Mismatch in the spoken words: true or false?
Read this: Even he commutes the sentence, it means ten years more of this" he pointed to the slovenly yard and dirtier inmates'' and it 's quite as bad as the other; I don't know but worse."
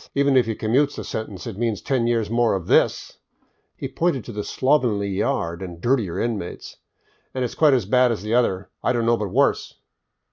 true